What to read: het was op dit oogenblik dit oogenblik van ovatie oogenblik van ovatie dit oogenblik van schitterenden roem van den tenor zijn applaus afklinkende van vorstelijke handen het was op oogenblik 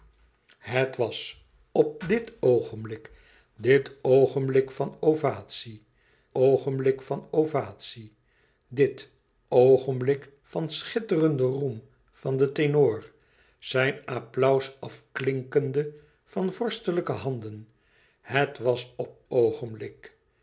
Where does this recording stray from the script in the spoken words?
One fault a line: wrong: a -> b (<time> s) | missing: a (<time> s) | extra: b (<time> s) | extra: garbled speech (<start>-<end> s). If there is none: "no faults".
no faults